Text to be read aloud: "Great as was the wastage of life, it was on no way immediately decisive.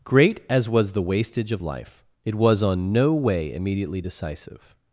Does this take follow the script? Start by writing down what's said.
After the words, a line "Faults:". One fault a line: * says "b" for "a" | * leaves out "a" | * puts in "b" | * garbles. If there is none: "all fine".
"Great as was the wastage of life, it was on no way immediately decisive.
Faults:
all fine